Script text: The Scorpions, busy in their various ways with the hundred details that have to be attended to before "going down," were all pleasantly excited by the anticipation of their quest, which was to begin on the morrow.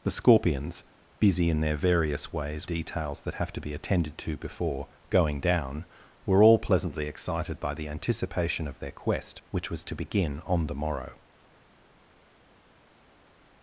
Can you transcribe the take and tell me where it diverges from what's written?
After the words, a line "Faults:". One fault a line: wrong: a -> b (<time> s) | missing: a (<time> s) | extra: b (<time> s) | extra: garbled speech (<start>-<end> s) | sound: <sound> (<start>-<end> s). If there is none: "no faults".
The Scorpions, busy in their various ways details that have to be attended to before "going down," were all pleasantly excited by the anticipation of their quest, which was to begin on the morrow.
Faults:
missing: with the hundred (2.7 s)